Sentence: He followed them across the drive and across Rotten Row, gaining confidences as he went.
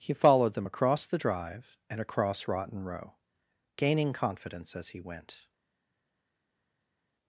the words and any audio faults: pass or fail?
fail